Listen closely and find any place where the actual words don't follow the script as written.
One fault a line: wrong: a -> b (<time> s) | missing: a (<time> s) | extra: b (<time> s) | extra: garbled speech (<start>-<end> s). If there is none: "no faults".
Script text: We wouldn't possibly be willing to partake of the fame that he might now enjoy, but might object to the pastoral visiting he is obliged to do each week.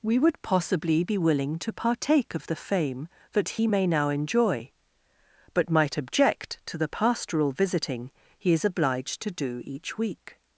wrong: wouldn't -> would (0.2 s)
wrong: might -> may (3.6 s)